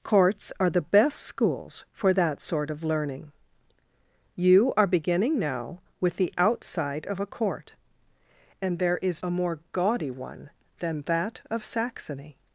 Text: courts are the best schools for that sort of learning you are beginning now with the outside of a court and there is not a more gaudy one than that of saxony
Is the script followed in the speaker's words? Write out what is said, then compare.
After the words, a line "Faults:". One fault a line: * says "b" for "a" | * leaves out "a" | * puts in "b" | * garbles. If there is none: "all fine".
courts are the best schools for that sort of learning you are beginning now with the outside of a court and there is a more gaudy one than that of saxony
Faults:
* leaves out "not"